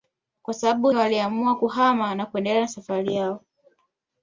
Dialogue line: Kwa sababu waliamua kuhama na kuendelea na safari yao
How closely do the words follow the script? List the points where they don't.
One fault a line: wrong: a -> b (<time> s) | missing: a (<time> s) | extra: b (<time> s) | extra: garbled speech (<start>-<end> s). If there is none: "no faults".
no faults